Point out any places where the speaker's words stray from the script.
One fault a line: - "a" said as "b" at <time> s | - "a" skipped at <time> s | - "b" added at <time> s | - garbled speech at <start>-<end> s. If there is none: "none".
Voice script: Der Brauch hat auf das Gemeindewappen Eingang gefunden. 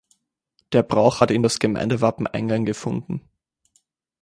- "auf" said as "in" at 1.3 s